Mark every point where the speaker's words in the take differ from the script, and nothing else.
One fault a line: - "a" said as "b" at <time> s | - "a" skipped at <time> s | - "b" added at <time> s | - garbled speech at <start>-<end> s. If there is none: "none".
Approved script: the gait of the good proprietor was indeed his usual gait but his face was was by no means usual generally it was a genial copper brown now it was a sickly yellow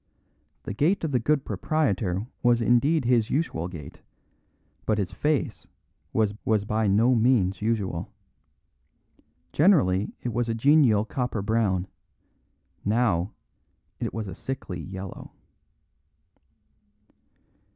none